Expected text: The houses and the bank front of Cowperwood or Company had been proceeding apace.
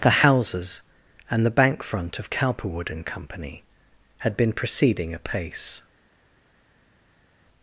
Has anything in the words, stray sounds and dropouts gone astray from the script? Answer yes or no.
yes